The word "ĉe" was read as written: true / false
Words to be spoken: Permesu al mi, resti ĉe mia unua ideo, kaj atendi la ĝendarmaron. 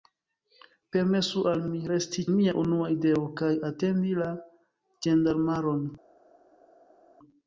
false